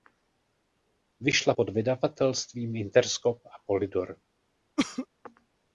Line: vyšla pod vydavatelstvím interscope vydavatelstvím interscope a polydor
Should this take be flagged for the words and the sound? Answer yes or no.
yes